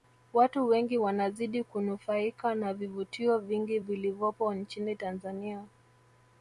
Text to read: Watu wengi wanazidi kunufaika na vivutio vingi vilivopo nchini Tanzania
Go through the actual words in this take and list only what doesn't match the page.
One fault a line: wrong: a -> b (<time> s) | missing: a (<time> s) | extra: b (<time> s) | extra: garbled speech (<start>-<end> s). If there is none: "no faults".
no faults